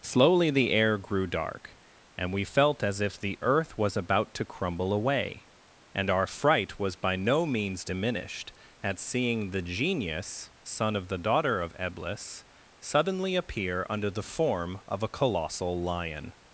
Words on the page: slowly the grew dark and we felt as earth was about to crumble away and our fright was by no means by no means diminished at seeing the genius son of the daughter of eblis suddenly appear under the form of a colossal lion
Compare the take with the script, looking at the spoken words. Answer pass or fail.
fail